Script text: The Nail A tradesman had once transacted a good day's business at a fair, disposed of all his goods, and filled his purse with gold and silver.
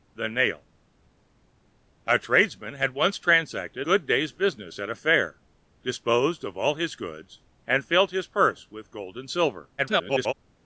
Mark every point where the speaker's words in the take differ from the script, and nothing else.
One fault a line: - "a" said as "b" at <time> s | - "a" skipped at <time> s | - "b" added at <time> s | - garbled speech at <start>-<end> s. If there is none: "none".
- "a" skipped at 3.9 s
- garbled speech at 9.8-10.3 s